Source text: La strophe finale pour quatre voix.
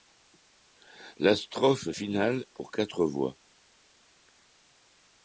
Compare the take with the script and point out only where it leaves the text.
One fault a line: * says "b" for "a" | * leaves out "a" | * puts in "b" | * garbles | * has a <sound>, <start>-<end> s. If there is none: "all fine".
all fine